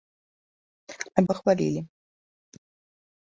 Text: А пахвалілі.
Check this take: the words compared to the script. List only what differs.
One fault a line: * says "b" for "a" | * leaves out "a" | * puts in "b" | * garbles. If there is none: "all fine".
all fine